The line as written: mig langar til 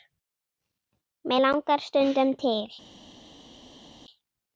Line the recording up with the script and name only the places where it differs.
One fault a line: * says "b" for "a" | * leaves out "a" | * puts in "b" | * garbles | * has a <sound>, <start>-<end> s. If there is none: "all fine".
* puts in "stundum"